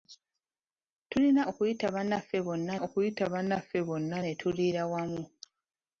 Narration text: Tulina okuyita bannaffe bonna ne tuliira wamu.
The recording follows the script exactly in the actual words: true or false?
false